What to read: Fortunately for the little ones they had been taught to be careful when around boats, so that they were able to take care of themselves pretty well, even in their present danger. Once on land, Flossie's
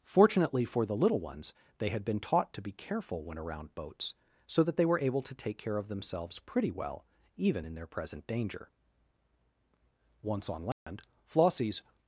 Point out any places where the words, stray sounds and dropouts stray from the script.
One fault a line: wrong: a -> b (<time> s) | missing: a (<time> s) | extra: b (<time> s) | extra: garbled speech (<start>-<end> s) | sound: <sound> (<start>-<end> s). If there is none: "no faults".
sound: dropout (10.7-10.9 s)